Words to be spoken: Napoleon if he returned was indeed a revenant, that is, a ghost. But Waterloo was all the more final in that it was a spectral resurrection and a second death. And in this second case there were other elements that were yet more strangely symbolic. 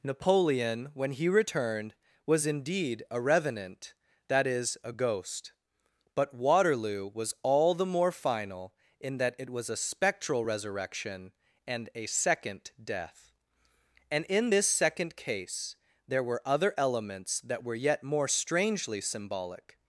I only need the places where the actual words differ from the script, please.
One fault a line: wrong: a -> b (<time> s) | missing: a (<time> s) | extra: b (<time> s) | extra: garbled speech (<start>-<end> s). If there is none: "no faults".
wrong: if -> when (0.9 s)